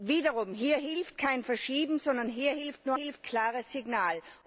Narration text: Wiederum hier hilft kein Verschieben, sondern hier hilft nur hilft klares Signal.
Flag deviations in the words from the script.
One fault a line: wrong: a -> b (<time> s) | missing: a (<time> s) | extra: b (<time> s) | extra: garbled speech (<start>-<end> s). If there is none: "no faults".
no faults